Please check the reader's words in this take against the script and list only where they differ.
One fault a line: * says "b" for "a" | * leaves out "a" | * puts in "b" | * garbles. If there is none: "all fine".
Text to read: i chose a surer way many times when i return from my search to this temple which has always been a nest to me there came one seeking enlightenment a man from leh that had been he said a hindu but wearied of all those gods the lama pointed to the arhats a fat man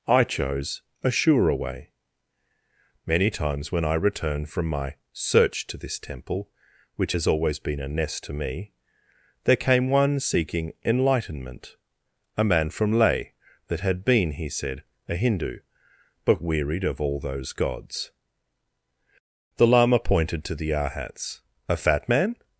all fine